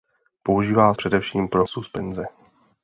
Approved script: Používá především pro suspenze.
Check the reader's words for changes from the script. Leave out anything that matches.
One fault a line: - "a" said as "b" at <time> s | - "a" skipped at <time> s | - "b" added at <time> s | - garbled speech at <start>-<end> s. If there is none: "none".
none